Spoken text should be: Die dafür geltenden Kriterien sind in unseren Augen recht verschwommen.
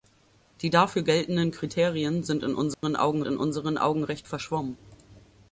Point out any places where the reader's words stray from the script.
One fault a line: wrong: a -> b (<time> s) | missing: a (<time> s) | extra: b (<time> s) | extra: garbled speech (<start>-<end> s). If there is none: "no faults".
extra: in unseren Augen (3.2 s)